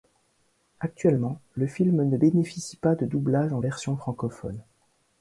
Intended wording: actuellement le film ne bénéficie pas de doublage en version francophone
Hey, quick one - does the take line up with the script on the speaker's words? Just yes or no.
yes